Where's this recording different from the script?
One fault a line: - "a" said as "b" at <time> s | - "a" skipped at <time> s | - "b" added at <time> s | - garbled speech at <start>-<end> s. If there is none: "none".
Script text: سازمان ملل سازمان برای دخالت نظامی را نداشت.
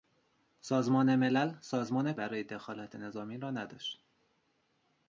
none